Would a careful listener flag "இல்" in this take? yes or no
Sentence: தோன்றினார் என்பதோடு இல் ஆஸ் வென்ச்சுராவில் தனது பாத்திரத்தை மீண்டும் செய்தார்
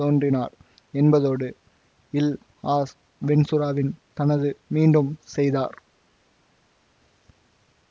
no